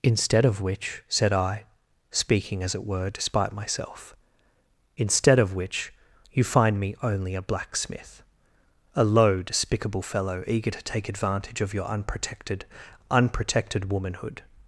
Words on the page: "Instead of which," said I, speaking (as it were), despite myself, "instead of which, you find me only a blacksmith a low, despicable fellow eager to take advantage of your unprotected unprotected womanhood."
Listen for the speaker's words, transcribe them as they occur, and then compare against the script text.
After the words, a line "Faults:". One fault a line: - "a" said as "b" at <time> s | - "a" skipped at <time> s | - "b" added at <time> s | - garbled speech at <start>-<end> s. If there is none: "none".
"Instead of which," said I, speaking (as it were), despite myself, "instead of which, you find me only a blacksmith a low, despicable fellow eager to take advantage of your unprotected unprotected womanhood."
Faults:
none